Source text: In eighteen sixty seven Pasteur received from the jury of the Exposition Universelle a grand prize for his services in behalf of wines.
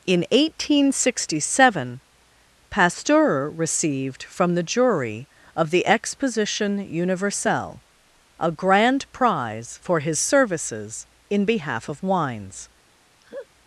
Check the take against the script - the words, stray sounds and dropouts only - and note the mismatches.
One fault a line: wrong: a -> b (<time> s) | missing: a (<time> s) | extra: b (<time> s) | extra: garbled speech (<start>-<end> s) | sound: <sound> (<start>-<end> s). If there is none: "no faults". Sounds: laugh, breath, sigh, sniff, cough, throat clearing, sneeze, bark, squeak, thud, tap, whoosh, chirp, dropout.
sound: laugh (13.2-13.5 s)